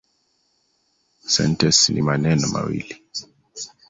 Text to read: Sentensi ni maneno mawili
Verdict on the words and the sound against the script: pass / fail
pass